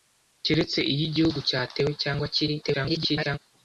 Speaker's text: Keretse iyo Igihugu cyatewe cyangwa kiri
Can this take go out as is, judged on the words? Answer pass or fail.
fail